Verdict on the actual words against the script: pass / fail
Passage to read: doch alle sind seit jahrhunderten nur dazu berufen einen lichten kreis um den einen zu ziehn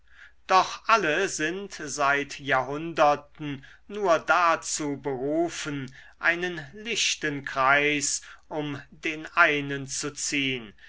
pass